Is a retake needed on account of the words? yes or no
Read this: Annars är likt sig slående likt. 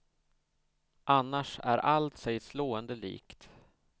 yes